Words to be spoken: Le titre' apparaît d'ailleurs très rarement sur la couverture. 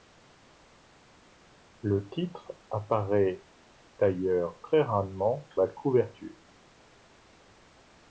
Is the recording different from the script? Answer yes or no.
yes